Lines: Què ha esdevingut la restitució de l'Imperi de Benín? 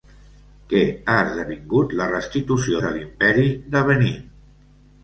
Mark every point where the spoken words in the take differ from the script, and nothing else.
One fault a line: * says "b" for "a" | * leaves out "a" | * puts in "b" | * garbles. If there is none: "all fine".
all fine